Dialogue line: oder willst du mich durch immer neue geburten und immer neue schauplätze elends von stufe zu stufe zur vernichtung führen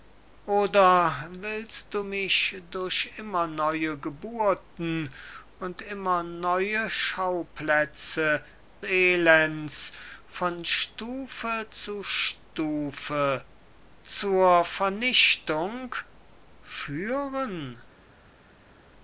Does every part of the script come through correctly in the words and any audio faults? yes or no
yes